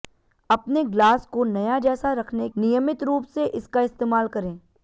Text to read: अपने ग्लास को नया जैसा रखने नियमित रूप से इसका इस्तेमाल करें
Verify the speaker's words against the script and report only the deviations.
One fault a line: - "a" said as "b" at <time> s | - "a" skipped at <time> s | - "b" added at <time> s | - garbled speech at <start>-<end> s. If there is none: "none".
none